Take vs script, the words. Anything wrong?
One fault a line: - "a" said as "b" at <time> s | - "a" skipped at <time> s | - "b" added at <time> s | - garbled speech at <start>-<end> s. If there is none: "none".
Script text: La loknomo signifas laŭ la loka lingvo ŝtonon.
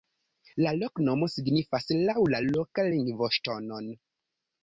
none